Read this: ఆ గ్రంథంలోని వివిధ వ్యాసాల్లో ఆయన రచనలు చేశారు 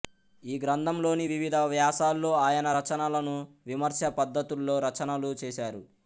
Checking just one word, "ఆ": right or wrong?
wrong